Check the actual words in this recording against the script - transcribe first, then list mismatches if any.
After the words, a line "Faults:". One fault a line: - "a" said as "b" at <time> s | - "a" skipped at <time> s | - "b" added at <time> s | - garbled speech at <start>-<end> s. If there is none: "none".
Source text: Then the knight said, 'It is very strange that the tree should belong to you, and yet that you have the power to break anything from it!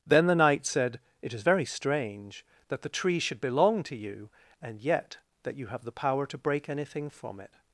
Then the knight said, 'It is very strange that the tree should belong to you, and yet that you have the power to break anything from it!
Faults:
none